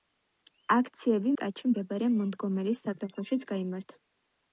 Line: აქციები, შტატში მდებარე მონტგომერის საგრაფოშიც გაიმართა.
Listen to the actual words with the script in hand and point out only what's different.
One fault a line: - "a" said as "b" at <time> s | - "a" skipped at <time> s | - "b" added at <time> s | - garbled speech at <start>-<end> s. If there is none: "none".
none